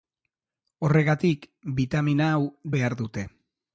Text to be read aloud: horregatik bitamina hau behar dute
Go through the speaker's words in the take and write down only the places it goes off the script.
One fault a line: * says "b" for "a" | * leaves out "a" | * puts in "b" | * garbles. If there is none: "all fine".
all fine